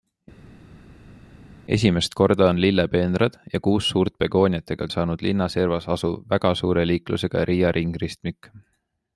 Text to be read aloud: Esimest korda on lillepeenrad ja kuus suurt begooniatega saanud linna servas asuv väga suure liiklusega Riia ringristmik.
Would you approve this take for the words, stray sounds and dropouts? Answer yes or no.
yes